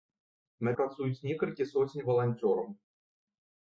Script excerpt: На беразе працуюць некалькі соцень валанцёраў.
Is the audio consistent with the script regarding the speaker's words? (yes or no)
no